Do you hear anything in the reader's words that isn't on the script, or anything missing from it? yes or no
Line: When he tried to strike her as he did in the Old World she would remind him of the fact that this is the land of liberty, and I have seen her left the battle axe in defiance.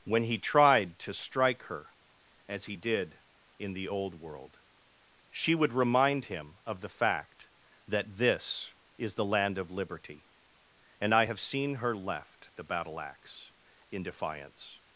no